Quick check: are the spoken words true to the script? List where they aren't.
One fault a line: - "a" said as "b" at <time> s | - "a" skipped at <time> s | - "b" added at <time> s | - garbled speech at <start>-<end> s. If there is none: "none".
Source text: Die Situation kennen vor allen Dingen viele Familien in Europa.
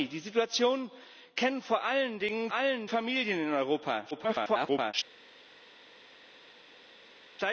- "viele" said as "allen" at 2.5 s
- garbled speech at 4.1-4.9 s